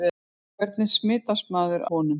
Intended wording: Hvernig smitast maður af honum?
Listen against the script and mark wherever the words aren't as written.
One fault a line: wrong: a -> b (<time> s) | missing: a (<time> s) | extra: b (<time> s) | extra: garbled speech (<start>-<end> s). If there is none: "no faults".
missing: af (1.9 s)